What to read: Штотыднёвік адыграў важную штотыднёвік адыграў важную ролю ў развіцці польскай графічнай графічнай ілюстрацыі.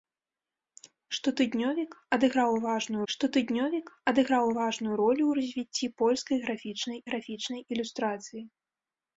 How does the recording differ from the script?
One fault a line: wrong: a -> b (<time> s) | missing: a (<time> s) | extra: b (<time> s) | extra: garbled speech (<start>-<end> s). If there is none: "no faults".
no faults